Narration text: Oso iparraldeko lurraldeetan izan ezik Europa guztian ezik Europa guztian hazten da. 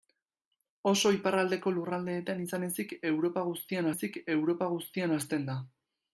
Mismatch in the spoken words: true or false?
false